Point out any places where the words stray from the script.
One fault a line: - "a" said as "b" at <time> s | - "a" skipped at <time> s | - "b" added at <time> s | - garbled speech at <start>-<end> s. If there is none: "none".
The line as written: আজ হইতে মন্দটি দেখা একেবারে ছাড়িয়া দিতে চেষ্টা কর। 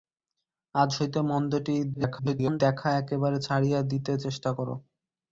- garbled speech at 1.9-2.6 s